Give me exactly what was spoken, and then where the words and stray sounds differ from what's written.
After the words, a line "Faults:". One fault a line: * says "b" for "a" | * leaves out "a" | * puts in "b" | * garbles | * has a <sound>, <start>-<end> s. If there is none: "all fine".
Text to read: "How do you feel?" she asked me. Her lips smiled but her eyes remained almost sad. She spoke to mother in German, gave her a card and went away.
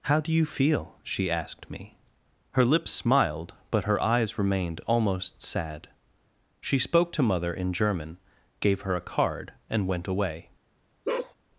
"How do you feel?" she asked me. Her lips smiled but her eyes remained almost sad. She spoke to mother in German, gave her a card and went away.
Faults:
* has a bark, 11.0-11.3 s